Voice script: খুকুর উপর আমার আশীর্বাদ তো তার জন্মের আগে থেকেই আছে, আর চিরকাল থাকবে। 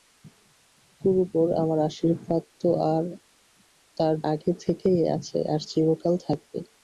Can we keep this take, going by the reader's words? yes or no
no